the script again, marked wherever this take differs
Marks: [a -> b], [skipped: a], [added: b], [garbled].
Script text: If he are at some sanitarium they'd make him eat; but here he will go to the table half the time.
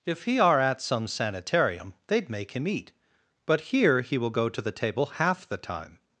If he are at some sanitarium they'd make him eat; but here he will go to the table half the time.